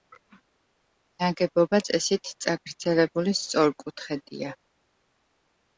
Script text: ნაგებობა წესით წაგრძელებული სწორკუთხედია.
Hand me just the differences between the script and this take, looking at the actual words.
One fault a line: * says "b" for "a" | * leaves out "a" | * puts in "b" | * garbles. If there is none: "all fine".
all fine